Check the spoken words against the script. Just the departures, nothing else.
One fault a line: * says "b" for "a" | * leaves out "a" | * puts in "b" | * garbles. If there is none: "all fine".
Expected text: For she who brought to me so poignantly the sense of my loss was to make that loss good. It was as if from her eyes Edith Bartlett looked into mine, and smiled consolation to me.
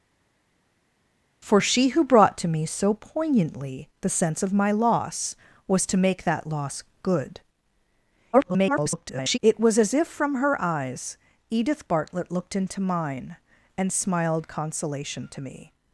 * garbles